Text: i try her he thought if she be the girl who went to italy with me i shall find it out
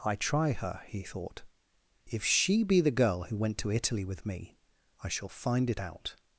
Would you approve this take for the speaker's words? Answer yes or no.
yes